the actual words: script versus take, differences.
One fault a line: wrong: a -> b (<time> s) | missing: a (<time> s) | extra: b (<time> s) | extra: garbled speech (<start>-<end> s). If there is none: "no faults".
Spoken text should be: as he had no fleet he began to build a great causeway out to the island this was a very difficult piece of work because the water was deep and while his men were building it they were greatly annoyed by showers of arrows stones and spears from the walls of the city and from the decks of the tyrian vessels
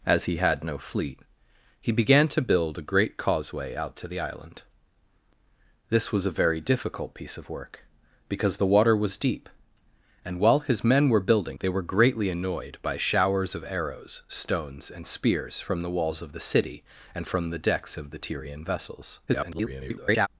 missing: it (11.6 s)
extra: garbled speech (19.3-20.3 s)